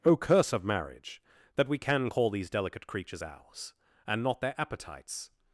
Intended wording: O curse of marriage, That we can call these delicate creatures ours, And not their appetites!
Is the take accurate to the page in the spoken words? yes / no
yes